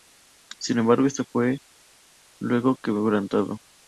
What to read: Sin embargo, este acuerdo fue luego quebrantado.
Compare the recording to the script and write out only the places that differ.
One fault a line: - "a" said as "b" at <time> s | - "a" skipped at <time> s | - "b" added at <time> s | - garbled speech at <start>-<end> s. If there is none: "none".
- "acuerdo" skipped at 1.2 s